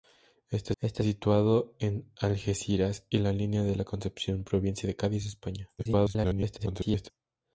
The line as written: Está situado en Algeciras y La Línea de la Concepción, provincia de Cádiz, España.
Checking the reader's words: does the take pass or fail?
fail